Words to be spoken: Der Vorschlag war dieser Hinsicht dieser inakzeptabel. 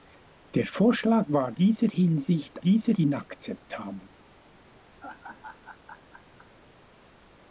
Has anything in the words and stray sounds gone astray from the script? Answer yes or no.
yes